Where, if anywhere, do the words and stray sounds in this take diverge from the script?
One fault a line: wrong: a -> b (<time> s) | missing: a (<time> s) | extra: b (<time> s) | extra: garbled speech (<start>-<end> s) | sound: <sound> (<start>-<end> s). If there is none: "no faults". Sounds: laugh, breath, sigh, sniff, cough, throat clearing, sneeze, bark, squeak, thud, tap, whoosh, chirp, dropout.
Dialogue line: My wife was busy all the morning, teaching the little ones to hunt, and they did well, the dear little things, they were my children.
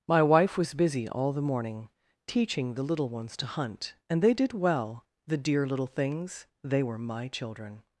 no faults